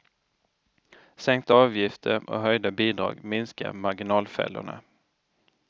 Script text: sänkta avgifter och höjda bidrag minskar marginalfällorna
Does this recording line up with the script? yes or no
yes